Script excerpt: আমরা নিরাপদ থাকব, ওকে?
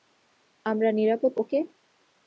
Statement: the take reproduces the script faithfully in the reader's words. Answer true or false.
false